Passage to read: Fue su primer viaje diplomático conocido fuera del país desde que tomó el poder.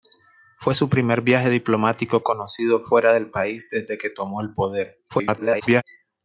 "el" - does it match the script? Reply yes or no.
yes